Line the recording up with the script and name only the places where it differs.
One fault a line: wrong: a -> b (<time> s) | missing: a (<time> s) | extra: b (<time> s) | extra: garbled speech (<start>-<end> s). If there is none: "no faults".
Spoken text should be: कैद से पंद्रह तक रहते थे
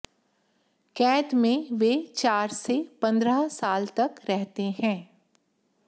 extra: में वे चार (1.3 s)
extra: साल (3.5 s)
wrong: थे -> हैं (4.8 s)